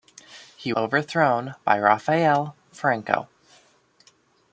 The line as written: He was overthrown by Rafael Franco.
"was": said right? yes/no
no